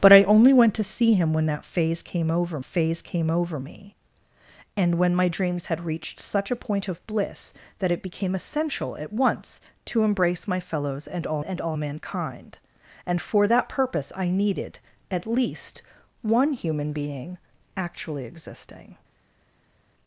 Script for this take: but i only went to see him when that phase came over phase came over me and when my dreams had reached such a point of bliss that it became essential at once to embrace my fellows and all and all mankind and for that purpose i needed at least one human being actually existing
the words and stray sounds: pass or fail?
pass